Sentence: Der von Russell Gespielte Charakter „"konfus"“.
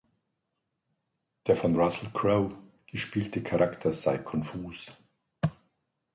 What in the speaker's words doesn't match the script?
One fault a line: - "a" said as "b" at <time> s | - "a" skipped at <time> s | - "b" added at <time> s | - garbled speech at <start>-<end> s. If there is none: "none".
- "Crowe" added at 2.1 s
- "sei" added at 3.9 s